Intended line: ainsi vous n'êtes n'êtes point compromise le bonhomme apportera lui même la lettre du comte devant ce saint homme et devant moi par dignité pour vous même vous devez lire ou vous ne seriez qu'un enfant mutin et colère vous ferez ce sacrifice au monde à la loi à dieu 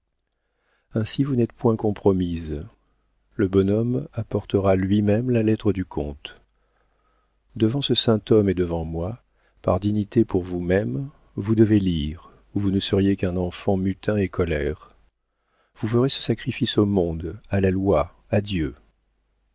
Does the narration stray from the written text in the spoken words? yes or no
yes